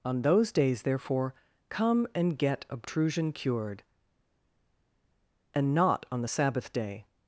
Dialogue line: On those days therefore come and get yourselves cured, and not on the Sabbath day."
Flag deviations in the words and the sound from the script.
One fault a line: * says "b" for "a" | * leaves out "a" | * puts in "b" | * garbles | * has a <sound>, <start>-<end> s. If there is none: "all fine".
* says "obtrusion" for "yourselves"